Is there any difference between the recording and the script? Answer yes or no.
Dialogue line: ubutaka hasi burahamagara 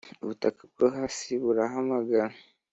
yes